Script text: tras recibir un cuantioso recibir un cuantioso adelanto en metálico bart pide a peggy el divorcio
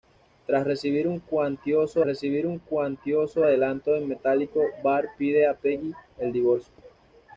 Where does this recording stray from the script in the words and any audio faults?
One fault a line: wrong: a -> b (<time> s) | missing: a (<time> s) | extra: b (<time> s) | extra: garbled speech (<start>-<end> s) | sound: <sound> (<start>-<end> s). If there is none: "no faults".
no faults